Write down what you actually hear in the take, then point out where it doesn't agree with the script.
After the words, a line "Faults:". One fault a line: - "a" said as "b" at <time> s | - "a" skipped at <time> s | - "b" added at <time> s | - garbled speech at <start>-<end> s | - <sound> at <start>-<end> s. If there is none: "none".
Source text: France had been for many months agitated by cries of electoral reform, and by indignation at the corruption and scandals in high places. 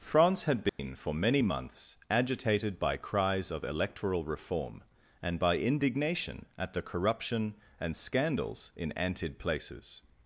France had been for many months agitated by cries of electoral reform, and by indignation at the corruption and scandals in antid places.
Faults:
- dropout at 0.7-0.8 s
- "high" said as "antid" at 8.9 s